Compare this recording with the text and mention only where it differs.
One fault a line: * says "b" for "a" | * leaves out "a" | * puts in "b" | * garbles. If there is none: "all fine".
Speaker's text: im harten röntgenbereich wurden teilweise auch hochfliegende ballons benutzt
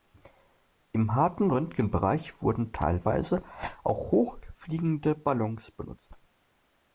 all fine